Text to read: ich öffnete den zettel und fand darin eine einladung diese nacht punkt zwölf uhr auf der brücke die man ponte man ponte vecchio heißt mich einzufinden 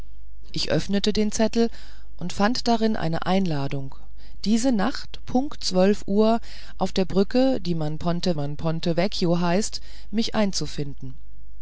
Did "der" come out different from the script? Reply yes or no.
no